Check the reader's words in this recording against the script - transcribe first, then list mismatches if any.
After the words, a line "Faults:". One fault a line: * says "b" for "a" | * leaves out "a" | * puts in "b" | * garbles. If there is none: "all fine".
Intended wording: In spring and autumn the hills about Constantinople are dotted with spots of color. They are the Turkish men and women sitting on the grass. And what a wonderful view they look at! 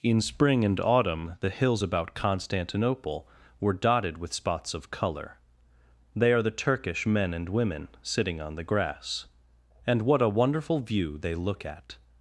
In spring and autumn the hills about Constantinople were dotted with spots of color. They are the Turkish men and women sitting on the grass. And what a wonderful view they look at!
Faults:
* says "were" for "are"